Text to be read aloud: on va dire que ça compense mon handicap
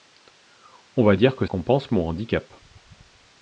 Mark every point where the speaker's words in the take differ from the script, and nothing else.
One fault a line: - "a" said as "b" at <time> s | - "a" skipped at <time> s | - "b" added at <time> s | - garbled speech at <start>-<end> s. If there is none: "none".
- "ça" skipped at 1.4 s